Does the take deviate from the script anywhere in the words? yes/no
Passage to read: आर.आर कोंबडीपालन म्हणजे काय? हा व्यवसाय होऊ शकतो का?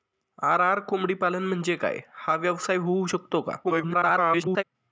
yes